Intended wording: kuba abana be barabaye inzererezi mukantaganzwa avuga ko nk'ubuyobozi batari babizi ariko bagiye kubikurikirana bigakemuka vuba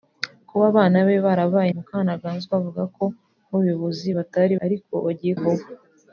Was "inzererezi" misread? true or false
true